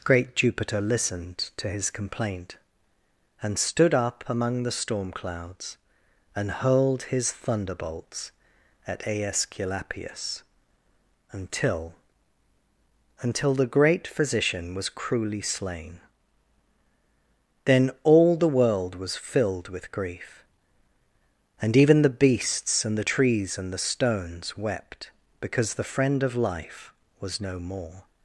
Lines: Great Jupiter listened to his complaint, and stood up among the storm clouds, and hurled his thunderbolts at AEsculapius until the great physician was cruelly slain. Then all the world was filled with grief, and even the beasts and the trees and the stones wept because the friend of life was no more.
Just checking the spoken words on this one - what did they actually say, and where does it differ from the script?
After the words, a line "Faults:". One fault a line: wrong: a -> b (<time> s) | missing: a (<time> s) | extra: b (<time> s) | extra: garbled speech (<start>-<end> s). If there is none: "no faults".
Great Jupiter listened to his complaint, and stood up among the storm clouds, and hurled his thunderbolts at AEsculapius until until the great physician was cruelly slain. Then all the world was filled with grief, and even the beasts and the trees and the stones wept because the friend of life was no more.
Faults:
extra: until (13.2 s)